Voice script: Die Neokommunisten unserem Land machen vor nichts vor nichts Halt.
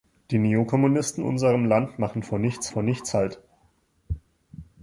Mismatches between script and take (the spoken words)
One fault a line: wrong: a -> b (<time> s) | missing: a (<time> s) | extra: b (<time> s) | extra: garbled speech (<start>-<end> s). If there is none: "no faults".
no faults